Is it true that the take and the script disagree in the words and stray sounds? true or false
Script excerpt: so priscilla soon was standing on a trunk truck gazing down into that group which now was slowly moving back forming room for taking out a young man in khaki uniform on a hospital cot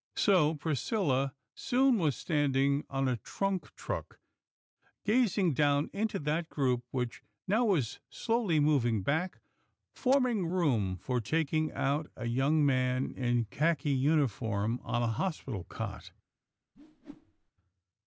true